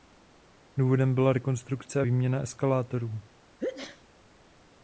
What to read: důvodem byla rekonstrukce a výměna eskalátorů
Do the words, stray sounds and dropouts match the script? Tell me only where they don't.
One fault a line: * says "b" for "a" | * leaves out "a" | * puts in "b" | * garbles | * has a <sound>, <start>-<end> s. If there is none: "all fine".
* has a sneeze, 3.6-4.0 s